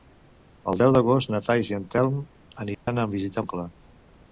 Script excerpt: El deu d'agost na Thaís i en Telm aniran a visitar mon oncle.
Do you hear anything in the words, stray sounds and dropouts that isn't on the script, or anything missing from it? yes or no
yes